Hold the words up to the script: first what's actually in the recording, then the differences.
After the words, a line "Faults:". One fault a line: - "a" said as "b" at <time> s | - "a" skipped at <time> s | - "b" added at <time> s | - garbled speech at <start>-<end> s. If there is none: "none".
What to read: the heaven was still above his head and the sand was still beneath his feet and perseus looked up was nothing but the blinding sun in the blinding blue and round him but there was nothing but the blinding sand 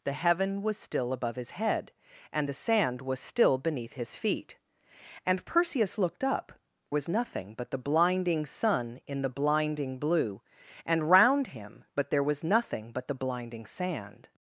the heaven was still above his head and the sand was still beneath his feet and perseus looked up was nothing but the blinding sun in the blinding blue and round him but there was nothing but the blinding sand
Faults:
none